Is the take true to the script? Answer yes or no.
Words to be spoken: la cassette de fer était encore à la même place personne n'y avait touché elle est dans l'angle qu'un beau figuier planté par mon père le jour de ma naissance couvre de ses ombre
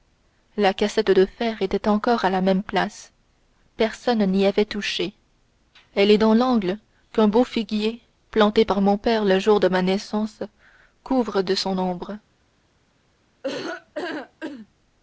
no